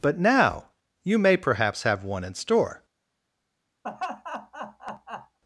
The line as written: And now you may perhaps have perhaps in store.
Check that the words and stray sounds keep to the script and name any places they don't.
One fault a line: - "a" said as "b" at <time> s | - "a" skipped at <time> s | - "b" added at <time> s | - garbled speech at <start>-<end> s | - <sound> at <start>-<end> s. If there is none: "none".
- "And" said as "But" at 0.0 s
- "perhaps" said as "one" at 2.0 s
- laugh at 3.8-5.4 s